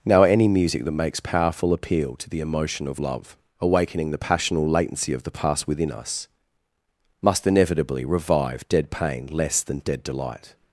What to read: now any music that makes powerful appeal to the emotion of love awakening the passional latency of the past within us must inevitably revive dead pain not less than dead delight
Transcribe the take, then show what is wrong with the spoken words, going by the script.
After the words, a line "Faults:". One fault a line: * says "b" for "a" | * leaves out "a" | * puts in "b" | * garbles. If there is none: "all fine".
now any music that makes powerful appeal to the emotion of love awakening the passional latency of the past within us must inevitably revive dead pain less than dead delight
Faults:
* leaves out "not"